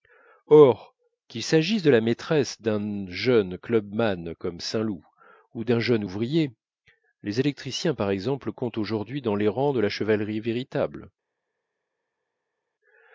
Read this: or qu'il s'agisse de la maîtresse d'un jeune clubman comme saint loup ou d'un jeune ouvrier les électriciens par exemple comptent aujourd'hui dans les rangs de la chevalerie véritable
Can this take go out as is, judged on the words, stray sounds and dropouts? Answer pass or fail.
pass